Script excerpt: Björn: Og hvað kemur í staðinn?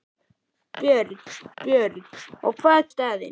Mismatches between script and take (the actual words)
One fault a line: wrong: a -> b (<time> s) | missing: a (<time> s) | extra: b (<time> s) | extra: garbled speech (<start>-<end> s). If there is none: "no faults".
extra: björn (1.6 s)
missing: kemur (2.9 s)